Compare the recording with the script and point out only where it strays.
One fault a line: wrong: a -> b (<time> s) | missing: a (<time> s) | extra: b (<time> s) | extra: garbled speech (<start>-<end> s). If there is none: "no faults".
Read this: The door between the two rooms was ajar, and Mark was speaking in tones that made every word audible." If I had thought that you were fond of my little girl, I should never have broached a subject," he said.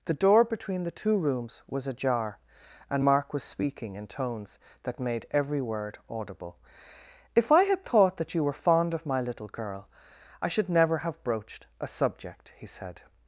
no faults